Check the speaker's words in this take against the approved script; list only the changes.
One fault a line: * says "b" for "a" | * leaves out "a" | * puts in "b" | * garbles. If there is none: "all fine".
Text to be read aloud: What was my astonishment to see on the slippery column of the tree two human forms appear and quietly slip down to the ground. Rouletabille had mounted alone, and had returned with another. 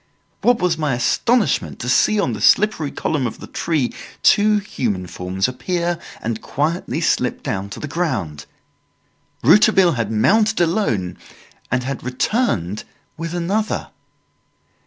all fine